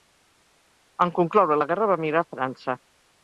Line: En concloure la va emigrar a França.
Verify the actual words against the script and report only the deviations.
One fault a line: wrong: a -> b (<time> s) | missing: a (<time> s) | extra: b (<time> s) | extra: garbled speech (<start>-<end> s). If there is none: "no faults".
extra: guerra (1.7 s)